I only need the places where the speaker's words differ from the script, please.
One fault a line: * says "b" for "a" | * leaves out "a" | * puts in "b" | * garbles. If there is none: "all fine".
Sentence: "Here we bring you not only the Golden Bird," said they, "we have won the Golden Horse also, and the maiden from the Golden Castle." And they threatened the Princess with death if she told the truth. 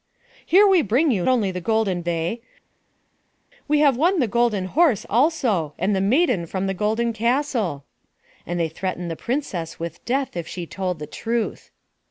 * leaves out "not"
* leaves out "Bird said"